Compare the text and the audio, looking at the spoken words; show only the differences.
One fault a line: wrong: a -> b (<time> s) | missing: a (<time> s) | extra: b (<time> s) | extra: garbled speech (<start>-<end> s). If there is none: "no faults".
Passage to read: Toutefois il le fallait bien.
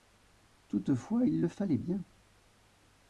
no faults